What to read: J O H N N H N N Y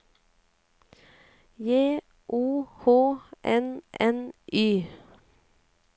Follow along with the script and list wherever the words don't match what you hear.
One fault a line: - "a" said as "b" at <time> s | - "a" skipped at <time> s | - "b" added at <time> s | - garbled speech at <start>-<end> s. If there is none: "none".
- "H N N" skipped at 4.3 s